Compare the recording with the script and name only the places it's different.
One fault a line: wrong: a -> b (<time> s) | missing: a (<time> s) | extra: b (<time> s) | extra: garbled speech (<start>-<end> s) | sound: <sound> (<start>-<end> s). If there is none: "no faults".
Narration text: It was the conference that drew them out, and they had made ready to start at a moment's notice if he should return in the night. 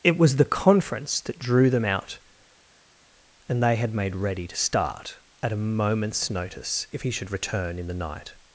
no faults